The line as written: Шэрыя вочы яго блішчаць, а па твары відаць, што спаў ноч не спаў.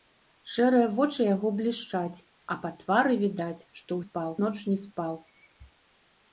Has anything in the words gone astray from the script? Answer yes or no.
no